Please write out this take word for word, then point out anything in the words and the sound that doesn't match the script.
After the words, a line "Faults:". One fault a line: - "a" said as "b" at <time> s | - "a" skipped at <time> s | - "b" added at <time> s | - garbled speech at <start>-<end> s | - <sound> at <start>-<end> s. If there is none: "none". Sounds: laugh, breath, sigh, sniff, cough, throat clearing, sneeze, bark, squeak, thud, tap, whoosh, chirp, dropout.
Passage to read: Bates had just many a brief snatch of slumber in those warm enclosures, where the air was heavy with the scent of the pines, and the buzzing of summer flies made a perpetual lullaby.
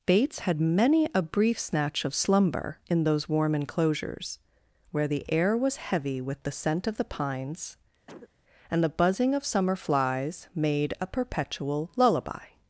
Bates had many a brief snatch of slumber in those warm enclosures, where the air was heavy with the scent of the pines, and the buzzing of summer flies made a perpetual lullaby.
Faults:
- "just" skipped at 0.6 s
- cough at 8.1-8.3 s